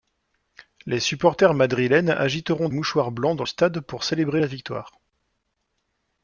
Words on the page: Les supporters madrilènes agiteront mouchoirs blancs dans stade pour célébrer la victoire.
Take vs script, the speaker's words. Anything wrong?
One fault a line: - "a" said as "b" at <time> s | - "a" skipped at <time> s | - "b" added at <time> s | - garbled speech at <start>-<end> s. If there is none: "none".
none